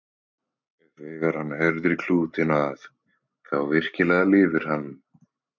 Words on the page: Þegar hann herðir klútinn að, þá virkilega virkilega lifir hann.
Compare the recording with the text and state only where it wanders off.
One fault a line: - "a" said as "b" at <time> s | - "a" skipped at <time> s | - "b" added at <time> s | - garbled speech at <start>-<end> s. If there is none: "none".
- "virkilega" skipped at 4.3 s